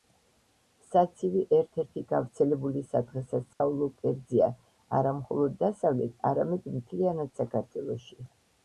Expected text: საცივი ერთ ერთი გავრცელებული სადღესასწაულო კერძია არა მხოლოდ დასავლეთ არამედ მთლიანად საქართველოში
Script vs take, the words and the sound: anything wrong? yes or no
yes